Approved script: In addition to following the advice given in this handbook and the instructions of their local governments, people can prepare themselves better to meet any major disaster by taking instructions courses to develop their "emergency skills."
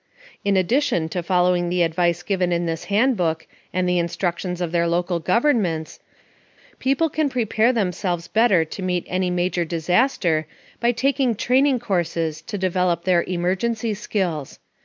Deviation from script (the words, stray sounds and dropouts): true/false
true